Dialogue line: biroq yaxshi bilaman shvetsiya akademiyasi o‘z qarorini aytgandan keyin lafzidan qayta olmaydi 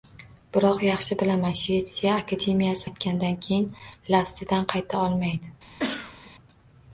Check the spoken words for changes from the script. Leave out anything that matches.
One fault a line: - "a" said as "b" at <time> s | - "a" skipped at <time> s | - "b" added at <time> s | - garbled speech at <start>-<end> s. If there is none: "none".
- "o‘z qarorini" skipped at 2.9 s